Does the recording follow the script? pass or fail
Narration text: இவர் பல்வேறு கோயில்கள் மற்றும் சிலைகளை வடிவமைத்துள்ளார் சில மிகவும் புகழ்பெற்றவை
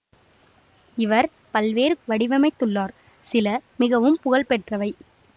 fail